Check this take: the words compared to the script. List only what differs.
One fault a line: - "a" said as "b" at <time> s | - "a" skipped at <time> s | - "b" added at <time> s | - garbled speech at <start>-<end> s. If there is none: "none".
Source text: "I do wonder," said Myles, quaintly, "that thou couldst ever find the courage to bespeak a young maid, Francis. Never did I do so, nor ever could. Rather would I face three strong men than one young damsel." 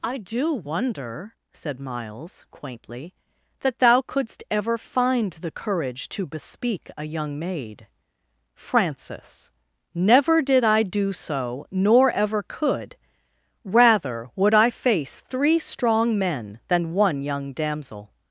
none